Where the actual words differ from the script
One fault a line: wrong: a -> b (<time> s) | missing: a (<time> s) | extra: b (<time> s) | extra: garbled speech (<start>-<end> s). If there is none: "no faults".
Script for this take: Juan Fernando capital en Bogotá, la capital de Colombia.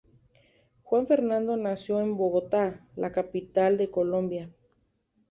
wrong: capital -> nació (1.6 s)